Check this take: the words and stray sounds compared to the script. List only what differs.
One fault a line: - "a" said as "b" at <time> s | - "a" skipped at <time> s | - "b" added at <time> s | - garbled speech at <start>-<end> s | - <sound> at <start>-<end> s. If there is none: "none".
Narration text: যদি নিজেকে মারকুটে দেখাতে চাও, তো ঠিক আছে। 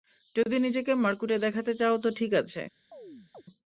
- chirp at 2.9-3.4 s